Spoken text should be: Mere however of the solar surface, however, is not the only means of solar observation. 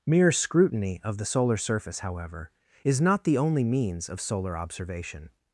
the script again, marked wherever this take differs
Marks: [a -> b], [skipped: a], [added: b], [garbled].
Mere [however -> scrutiny] of the solar surface, however, is not the only means of solar observation.